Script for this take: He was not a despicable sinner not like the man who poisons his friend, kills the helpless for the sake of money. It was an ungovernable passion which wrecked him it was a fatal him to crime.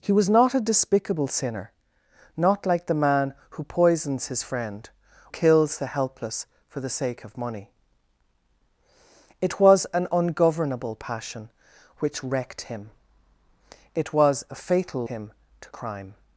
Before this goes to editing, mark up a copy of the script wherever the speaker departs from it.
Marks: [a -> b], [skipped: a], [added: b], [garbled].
He was not a despicable sinner not like the man who poisons his friend, kills the helpless for the sake of money. It was an ungovernable passion which wrecked him it was a fatal him to crime.